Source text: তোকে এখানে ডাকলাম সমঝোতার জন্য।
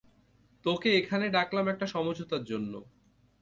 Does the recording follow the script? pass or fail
fail